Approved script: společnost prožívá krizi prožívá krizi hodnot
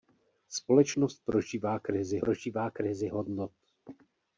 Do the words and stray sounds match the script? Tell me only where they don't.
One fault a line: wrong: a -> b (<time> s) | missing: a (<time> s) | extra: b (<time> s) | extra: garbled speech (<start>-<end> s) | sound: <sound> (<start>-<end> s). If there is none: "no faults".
no faults